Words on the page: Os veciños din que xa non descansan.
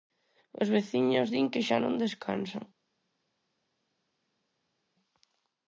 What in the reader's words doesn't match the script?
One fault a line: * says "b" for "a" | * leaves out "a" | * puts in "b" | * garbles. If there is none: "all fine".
all fine